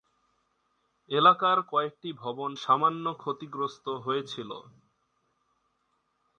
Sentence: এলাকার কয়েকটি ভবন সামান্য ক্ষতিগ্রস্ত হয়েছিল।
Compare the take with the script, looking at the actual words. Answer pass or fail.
pass